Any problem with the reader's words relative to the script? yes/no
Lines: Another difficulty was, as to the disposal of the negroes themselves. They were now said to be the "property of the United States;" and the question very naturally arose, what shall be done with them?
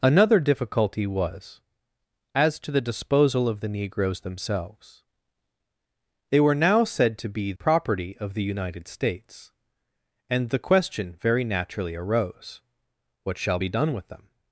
yes